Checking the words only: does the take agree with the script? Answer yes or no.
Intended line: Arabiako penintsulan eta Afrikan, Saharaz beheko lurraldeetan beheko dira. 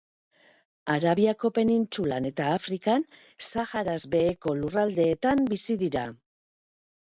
no